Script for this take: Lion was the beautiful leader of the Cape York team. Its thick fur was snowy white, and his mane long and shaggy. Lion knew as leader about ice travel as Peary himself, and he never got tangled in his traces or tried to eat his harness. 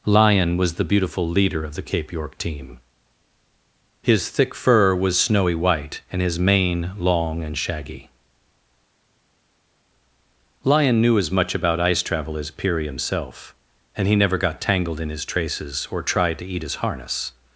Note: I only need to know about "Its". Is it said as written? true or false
false